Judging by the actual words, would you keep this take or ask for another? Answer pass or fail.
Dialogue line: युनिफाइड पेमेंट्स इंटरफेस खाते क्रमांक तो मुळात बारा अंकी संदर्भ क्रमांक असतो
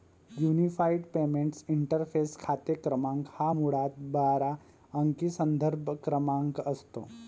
fail